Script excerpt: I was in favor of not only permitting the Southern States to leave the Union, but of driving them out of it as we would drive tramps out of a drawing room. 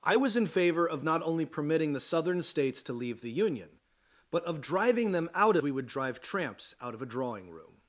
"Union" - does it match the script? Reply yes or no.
yes